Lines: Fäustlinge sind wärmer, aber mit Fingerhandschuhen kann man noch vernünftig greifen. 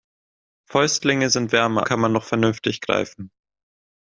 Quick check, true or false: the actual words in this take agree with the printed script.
false